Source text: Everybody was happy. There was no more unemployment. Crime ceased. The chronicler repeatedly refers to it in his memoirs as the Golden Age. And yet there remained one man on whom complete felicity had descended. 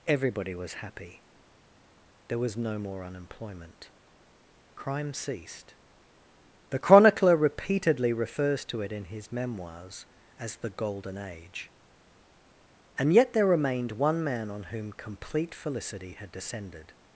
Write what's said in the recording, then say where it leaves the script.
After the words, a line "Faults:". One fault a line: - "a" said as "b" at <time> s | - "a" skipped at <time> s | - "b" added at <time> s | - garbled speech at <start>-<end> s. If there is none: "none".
Everybody was happy. There was no more unemployment. Crime ceased. The chronicler repeatedly refers to it in his memoirs as the Golden Age. And yet there remained one man on whom complete felicity had descended.
Faults:
none